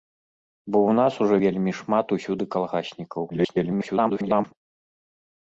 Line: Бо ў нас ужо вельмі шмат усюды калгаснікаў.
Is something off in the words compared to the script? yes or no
yes